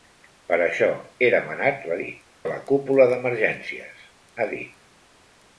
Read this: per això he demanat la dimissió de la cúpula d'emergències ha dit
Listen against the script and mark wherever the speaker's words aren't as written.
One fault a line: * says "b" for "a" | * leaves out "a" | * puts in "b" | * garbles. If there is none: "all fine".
* says "dit" for "dimissió"